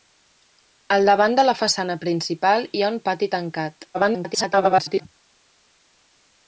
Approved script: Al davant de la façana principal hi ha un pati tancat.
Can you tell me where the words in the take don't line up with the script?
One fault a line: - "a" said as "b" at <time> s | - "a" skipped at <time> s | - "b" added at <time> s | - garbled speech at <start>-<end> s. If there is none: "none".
- garbled speech at 3.9-5.1 s